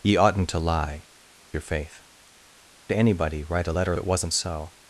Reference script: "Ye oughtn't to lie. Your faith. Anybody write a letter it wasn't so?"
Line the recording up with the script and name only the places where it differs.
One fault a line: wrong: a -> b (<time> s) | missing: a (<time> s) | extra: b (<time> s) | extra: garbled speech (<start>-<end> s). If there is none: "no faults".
no faults